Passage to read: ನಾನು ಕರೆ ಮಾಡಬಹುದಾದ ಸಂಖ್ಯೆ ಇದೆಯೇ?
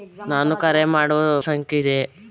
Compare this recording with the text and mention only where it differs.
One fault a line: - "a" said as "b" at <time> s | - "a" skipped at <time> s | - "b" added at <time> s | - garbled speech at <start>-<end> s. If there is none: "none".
- "ಮಾಡಬಹುದಾದ" skipped at 0.8 s